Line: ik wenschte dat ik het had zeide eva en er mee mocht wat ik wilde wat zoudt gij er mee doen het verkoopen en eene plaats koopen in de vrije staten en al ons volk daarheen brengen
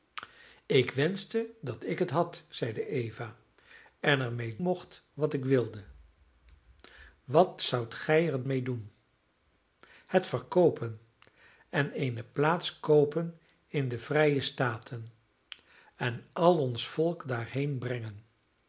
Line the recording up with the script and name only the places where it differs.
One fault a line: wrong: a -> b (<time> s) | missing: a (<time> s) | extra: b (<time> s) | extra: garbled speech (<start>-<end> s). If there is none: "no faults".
no faults